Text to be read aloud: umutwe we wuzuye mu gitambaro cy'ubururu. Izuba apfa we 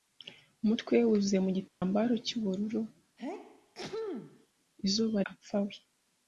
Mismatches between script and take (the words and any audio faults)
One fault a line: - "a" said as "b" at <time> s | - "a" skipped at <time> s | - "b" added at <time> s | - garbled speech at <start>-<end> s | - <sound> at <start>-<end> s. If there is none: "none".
- dropout at 1.7-1.8 s
- sneeze at 3.2-4.5 s